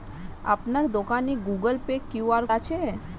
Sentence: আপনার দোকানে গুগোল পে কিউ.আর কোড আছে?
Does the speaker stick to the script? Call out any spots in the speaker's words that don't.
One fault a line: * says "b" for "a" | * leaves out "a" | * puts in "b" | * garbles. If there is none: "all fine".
* leaves out "কোড"